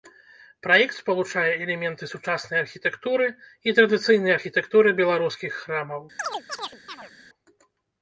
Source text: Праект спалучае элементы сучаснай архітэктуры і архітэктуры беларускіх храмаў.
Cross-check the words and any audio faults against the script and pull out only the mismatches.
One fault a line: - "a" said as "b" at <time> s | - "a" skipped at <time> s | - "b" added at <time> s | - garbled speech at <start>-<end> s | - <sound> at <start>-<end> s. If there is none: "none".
- "традыцыйнай" added at 3.8 s
- chirp at 6.2-7.1 s